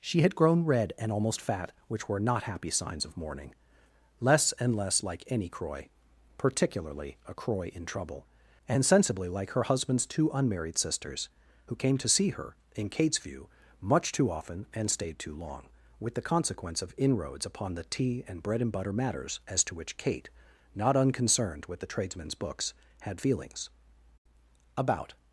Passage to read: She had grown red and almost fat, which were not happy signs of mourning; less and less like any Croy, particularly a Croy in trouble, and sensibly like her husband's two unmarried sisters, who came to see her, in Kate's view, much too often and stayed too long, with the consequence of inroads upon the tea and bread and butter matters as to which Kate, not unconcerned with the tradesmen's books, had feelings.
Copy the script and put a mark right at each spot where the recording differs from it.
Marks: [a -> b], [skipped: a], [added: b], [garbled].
She had grown red and almost fat, which were not happy signs of mourning; less and less like any Croy, particularly a Croy in trouble, and sensibly like her husband's two unmarried sisters, who came to see her, in Kate's view, much too often and stayed too long, with the consequence of inroads upon the tea and bread and butter matters as to which Kate, not unconcerned with the tradesmen's books, had feelings. [added: About]